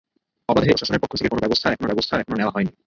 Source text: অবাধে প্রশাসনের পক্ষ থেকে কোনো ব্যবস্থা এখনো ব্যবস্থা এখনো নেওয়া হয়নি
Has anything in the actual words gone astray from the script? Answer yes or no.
no